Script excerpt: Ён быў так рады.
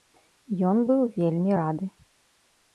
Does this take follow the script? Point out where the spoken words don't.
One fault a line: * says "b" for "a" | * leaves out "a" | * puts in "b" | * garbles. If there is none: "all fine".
* says "вельмі" for "так"